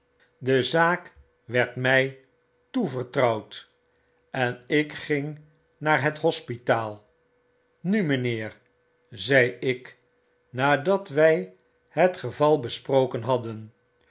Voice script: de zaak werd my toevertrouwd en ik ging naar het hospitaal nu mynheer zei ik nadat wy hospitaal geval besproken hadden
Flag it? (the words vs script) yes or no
yes